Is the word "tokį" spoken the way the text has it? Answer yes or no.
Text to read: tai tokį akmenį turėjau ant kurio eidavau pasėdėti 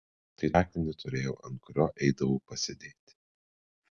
no